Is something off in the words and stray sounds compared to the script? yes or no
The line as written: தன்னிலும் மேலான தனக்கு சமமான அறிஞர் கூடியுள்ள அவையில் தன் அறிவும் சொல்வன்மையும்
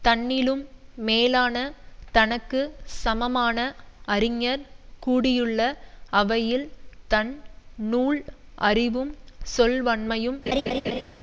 yes